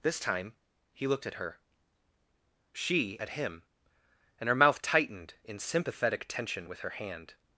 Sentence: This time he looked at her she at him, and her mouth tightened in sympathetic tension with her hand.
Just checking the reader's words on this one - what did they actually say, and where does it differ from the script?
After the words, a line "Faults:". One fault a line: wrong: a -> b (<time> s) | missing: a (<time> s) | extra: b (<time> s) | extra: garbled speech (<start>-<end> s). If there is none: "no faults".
This time he looked at her she at him, and her mouth tightened in sympathetic tension with her hand.
Faults:
no faults